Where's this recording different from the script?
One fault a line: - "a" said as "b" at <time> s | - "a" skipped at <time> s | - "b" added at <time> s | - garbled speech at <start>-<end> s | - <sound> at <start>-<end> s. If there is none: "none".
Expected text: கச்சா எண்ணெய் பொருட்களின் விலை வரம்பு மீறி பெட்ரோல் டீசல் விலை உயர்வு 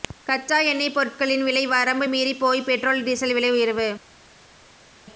- "போய்" added at 2.4 s